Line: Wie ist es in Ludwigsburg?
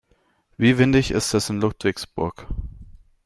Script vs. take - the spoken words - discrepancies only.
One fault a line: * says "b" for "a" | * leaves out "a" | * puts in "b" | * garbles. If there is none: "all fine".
* puts in "windig"